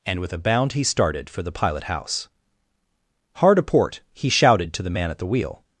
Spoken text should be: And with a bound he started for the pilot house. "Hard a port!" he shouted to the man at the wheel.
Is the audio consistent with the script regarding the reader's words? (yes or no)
yes